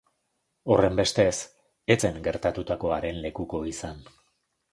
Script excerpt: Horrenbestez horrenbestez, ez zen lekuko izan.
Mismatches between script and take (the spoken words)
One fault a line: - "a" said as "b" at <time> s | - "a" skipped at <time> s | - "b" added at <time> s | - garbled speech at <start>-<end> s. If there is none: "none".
- "horrenbestez" skipped at 1.4 s
- "gertatutakoaren" added at 2.3 s